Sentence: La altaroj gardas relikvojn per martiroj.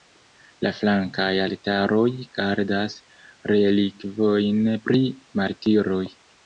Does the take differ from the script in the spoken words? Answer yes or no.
yes